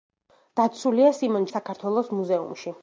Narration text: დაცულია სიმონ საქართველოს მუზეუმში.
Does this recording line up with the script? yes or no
yes